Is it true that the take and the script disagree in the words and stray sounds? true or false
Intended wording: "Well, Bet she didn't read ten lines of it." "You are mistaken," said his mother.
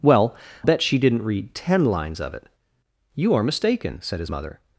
false